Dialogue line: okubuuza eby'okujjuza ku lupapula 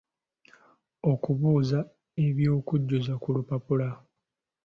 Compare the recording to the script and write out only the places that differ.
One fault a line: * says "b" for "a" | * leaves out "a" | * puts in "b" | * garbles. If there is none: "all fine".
all fine